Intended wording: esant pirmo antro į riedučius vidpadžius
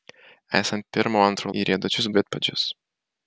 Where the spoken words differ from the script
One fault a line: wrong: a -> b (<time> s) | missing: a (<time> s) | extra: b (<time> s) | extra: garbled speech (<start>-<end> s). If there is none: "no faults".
no faults